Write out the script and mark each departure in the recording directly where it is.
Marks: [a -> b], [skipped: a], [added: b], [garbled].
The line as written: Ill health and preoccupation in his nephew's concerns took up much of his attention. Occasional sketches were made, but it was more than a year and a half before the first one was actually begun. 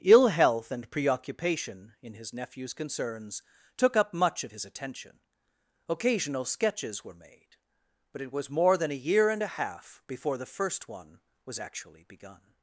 Ill health and preoccupation in his nephew's concerns took up much of his attention. Occasional sketches were made, but it was more than a year and a half before the first one was actually begun.